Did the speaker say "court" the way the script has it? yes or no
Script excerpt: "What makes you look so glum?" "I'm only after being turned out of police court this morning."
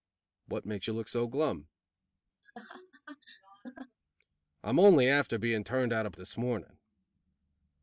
no